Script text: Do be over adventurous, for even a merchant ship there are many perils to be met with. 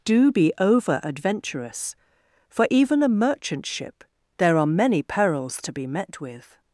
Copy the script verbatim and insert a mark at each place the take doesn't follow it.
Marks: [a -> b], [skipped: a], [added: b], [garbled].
Do be over adventurous, for even a merchant ship there are many perils to be met with.